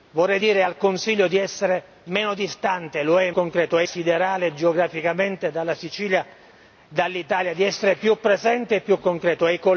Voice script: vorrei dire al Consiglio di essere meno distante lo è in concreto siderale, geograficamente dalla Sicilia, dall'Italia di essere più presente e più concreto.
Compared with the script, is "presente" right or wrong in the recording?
right